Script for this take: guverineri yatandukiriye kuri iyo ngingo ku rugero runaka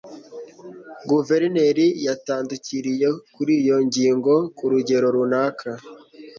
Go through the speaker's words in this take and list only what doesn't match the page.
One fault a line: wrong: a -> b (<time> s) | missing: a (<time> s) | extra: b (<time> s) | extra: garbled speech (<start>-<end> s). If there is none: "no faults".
no faults